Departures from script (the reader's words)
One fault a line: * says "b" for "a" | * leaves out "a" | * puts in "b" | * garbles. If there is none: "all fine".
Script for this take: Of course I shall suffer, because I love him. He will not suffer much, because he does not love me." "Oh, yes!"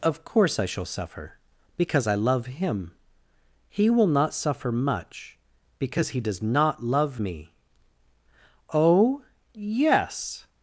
all fine